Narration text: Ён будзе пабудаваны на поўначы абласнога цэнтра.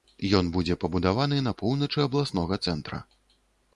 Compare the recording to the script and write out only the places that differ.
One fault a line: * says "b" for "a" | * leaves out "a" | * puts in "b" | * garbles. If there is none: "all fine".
all fine